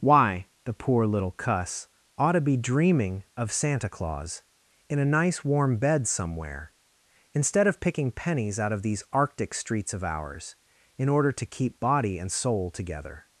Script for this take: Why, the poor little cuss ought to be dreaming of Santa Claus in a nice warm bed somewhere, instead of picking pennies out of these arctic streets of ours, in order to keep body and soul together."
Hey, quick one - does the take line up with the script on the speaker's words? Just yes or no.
yes